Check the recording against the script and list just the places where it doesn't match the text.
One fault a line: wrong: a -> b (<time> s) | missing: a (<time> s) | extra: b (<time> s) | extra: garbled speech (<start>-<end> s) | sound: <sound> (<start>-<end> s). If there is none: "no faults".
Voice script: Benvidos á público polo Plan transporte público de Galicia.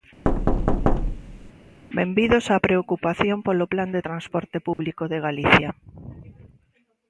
sound: thud (0.2-1.5 s)
wrong: público -> preocupación (2.7 s)
extra: de (4.0 s)
sound: dropout (4.7-4.8 s)